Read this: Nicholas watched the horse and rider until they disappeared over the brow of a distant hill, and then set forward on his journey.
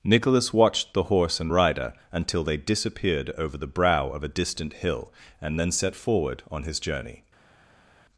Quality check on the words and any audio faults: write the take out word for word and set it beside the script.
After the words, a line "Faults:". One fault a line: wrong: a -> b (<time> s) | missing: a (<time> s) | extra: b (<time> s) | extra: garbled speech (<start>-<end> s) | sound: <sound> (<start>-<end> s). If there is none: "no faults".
Nicholas watched the horse and rider until they disappeared over the brow of a distant hill, and then set forward on his journey.
Faults:
no faults